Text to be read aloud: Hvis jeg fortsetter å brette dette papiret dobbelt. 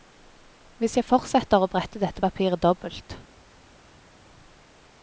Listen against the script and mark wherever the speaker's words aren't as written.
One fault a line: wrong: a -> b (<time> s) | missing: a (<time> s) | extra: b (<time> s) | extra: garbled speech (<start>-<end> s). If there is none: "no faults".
no faults